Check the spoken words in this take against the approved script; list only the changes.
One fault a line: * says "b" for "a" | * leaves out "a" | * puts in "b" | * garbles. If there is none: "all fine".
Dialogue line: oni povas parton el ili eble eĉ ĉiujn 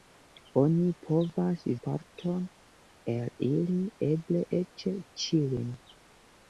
all fine